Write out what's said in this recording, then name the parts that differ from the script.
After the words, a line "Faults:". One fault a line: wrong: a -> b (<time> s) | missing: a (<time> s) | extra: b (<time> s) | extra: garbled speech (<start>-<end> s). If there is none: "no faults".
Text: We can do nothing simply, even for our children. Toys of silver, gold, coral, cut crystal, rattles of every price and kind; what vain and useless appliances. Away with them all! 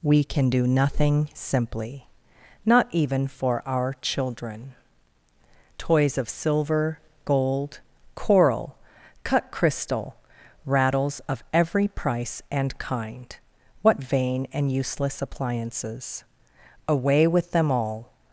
We can do nothing simply, not even for our children. Toys of silver, gold, coral, cut crystal, rattles of every price and kind; what vain and useless appliances. Away with them all!
Faults:
extra: not (2.6 s)